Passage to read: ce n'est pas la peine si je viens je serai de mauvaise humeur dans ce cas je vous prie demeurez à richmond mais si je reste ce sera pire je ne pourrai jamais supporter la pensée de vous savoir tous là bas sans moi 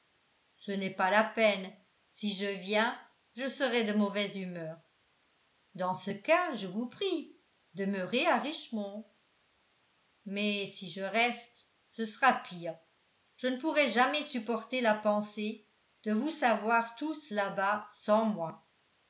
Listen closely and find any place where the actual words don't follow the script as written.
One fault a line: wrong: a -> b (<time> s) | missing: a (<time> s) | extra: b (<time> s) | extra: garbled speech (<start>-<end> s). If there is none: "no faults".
no faults